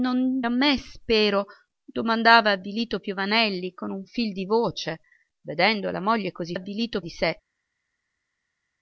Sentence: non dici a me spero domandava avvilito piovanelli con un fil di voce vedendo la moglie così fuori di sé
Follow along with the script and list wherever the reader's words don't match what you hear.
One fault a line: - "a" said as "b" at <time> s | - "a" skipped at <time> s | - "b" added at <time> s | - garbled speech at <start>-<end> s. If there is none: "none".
- "dici" skipped at 0.4 s
- "fuori" said as "avvilito" at 6.5 s